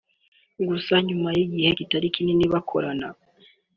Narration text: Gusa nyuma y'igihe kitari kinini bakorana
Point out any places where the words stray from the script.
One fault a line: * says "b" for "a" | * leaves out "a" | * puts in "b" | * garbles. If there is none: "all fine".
all fine